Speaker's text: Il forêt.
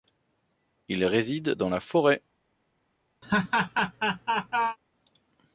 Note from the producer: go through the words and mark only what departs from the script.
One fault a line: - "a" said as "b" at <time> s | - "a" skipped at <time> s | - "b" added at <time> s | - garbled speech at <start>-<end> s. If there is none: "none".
- "réside dans la" added at 1.1 s